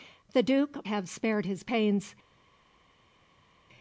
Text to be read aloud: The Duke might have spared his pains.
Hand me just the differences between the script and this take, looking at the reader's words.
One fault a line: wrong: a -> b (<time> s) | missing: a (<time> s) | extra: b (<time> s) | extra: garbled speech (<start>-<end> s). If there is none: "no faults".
missing: might (0.9 s)